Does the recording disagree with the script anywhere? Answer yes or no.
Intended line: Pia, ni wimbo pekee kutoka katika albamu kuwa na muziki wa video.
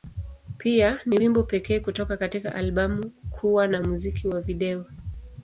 no